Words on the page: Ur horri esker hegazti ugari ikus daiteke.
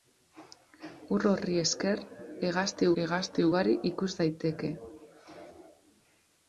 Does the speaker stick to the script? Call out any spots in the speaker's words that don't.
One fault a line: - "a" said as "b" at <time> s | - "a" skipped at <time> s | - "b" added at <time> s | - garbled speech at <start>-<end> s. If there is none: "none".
- "hegazti" added at 3.0 s